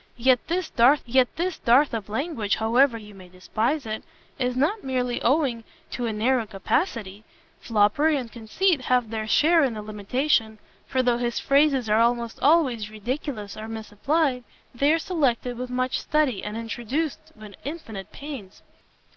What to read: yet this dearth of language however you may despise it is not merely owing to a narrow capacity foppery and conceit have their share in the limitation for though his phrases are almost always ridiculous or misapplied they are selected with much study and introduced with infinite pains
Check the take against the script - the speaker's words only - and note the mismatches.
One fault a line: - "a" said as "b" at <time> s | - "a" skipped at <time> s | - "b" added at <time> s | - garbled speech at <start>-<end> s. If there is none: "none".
- "yet this dearth" added at 1.1 s